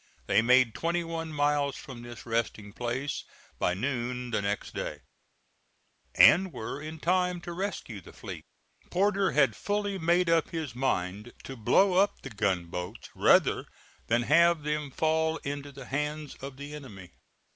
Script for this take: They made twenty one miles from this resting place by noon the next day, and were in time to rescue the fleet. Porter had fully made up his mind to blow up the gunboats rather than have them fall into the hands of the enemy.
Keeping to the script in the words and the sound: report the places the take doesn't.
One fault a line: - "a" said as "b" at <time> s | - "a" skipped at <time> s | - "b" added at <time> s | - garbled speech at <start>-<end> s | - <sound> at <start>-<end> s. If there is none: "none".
none